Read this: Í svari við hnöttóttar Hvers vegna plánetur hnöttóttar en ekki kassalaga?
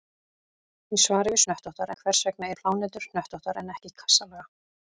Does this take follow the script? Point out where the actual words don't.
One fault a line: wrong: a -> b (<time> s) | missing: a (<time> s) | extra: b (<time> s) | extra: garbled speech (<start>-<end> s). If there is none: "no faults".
no faults